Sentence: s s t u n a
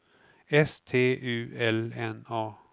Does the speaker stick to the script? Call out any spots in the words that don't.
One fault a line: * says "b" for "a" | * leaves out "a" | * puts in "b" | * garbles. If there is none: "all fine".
* leaves out "s"
* puts in "l"